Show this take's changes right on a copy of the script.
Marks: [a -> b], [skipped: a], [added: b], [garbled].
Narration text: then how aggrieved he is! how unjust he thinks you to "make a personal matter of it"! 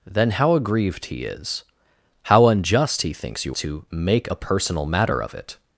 then how aggrieved he is! how unjust he thinks you to "make a personal matter of it"!